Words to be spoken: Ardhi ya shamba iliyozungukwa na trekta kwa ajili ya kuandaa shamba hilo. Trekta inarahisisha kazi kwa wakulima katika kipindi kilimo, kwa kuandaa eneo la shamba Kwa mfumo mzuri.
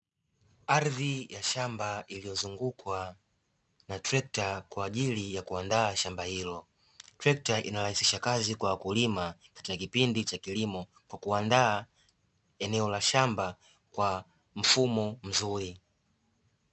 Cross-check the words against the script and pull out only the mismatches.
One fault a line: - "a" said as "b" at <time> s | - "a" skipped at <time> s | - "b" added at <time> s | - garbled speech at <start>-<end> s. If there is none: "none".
- "cha" added at 10.2 s